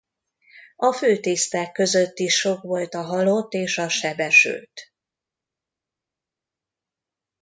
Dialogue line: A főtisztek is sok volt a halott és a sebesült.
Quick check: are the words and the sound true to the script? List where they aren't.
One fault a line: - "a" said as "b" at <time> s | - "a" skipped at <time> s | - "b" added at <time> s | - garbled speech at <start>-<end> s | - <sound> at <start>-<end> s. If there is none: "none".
- "között" added at 1.7 s